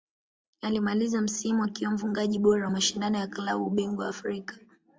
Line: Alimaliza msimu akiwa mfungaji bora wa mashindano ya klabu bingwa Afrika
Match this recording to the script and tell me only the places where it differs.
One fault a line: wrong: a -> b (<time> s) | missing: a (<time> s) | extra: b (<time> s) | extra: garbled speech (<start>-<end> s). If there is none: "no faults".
no faults